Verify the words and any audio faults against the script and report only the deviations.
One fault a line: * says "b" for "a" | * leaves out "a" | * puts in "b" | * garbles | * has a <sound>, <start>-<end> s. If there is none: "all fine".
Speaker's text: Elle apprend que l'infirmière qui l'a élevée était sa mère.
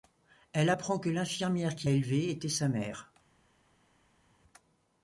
* leaves out "l'a"